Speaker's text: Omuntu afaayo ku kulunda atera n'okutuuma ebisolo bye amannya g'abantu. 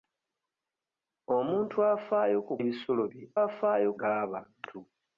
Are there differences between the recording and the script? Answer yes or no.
yes